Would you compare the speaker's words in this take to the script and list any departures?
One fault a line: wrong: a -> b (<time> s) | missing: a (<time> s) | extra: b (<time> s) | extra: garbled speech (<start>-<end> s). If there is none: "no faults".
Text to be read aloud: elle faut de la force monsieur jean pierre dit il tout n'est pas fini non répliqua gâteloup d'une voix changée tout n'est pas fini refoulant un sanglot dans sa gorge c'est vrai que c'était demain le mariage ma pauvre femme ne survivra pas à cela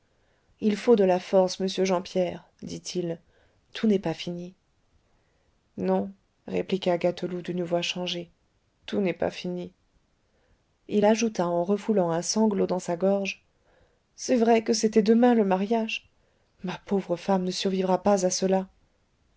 wrong: elle -> il (0.6 s)
extra: il ajouta en (10.9 s)